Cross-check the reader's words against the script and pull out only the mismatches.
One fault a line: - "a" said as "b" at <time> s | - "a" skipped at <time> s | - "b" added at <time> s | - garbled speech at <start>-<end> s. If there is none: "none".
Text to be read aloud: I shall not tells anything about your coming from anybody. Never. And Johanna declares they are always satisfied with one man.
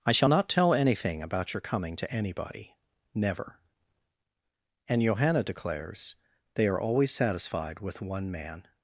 - "tells" said as "tell" at 0.5 s
- "from" said as "to" at 2.0 s